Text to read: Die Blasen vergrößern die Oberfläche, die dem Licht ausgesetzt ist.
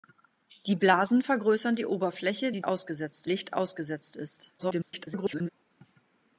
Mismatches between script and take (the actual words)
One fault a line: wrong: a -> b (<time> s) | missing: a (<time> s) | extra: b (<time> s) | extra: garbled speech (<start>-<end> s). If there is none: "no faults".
wrong: dem -> ausgesetzt (2.6 s)
extra: garbled speech (4.6-5.5 s)